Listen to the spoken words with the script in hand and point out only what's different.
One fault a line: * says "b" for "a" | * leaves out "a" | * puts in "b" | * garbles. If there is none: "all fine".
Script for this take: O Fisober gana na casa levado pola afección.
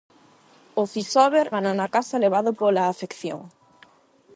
all fine